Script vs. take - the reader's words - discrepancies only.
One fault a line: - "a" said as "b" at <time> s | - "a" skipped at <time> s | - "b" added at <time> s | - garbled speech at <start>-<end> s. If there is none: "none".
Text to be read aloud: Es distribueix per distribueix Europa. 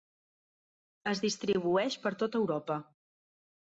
- "distribueix" said as "tot" at 2.2 s